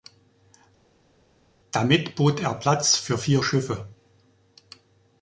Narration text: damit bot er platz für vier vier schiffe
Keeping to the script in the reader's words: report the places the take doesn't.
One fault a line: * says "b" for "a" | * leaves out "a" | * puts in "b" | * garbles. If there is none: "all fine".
* leaves out "vier"